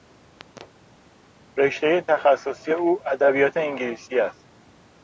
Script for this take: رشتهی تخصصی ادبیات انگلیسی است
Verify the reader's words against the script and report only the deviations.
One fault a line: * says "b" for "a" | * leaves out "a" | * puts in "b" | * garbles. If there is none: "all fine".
* puts in "او"